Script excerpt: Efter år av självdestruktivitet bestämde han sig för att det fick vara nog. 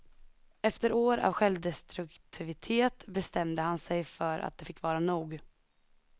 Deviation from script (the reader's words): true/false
false